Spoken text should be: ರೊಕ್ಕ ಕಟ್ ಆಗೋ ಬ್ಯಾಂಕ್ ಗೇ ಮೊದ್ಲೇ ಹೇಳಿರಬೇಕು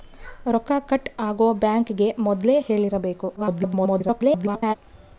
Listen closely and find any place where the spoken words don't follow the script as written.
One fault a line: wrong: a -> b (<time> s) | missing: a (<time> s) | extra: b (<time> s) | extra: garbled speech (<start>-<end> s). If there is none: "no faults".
extra: garbled speech (3.4-4.7 s)